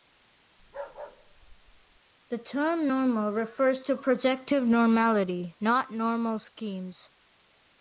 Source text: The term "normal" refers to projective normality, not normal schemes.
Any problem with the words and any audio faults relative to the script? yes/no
yes